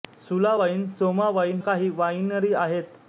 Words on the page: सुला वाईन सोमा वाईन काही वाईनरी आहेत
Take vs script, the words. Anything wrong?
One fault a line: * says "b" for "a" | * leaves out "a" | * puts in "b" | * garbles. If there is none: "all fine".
all fine